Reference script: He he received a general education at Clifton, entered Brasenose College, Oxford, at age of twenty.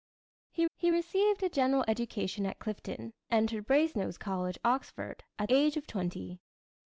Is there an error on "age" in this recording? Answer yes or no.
no